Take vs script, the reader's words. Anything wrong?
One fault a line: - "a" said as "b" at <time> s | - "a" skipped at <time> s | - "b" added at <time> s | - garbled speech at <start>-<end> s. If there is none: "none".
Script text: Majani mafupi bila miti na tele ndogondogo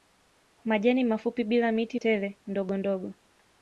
- "na" skipped at 2.0 s